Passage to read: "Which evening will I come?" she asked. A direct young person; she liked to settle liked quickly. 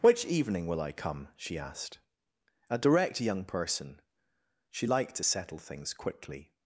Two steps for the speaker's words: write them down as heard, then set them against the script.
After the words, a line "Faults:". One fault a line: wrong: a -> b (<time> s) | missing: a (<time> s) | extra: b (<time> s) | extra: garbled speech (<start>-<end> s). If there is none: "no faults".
"Which evening will I come?" she asked. A direct young person; she liked to settle things quickly.
Faults:
wrong: liked -> things (5.6 s)